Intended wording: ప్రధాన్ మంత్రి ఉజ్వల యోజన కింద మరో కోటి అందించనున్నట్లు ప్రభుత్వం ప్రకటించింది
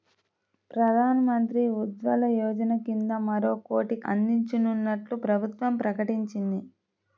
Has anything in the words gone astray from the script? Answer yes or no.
no